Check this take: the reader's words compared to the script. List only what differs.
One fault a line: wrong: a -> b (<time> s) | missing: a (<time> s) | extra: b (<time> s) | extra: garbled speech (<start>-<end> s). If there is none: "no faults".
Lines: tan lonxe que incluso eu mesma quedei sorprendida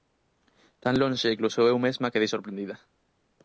missing: que (1.4 s)